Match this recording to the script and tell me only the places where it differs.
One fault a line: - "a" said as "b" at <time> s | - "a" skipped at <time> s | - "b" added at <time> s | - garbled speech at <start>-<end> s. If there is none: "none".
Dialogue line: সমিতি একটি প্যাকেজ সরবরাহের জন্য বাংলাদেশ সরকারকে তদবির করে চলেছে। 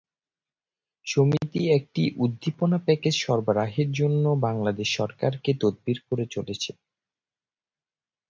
- "উদ্দীপনা" added at 2.2 s